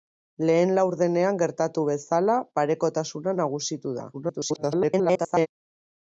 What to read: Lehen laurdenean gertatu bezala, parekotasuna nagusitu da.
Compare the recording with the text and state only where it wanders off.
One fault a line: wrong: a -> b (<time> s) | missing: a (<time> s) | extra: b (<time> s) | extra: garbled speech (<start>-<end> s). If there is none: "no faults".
extra: garbled speech (4.1-5.5 s)